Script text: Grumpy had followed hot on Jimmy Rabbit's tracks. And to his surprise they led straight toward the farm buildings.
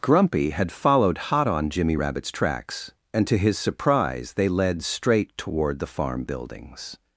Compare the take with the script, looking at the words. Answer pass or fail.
pass